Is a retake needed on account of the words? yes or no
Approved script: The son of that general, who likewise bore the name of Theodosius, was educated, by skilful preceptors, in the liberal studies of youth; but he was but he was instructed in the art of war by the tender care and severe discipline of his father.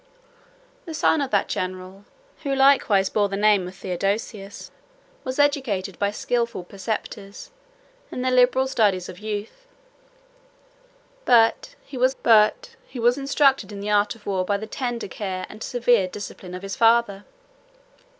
no